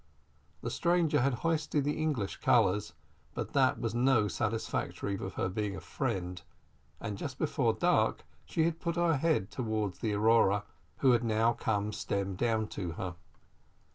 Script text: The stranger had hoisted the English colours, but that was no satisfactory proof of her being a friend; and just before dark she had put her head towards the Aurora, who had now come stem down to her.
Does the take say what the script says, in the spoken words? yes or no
no